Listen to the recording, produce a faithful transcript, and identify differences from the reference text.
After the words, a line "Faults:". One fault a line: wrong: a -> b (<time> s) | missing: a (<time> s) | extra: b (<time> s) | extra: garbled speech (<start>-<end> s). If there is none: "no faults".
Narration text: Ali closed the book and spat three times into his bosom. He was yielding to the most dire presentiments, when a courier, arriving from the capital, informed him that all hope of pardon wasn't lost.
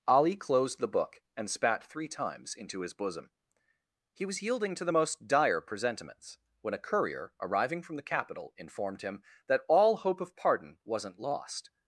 Ali closed the book and spat three times into his bosom. He was yielding to the most dire presentiments, when a courier, arriving from the capital, informed him that all hope of pardon wasn't lost.
Faults:
no faults